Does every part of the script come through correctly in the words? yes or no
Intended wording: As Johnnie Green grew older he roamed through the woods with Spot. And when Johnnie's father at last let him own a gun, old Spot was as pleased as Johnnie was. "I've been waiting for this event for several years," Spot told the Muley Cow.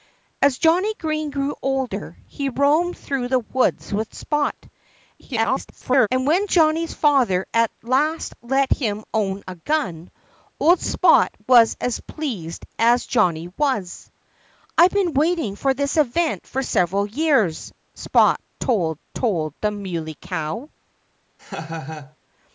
no